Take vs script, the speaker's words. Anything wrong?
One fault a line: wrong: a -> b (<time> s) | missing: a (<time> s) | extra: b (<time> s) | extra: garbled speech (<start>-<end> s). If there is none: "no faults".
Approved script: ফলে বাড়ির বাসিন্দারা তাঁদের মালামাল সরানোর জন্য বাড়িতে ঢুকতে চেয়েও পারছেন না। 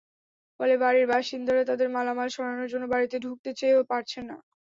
no faults